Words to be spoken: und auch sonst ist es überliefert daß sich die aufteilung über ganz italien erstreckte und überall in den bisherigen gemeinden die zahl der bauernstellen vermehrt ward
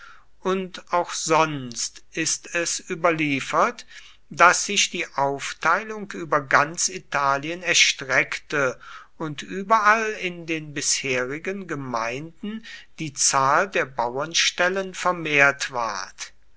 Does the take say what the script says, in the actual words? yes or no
yes